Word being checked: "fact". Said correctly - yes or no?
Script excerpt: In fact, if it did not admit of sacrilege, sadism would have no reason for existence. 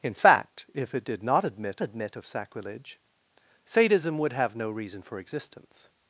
yes